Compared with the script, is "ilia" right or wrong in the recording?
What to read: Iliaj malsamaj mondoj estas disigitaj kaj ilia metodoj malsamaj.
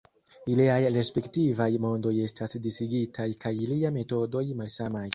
right